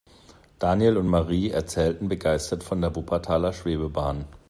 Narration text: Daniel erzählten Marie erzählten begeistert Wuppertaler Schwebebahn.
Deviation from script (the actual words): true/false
true